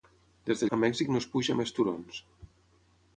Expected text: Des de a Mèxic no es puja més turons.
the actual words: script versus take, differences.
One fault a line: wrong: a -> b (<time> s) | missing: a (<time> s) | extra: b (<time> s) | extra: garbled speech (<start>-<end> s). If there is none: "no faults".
no faults